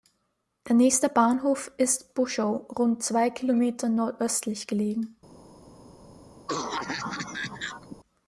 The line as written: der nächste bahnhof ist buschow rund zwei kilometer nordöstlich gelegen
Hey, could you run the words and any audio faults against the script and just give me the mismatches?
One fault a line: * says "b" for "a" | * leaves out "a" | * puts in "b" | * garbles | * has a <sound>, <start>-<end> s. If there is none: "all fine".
* has a cough, 6.5-8.0 s